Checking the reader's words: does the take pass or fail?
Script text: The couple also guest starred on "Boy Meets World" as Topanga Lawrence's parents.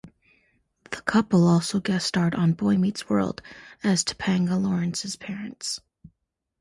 pass